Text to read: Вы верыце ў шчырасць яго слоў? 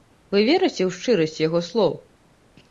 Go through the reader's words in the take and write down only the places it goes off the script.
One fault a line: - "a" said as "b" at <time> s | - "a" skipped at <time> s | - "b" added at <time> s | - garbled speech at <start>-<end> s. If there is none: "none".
none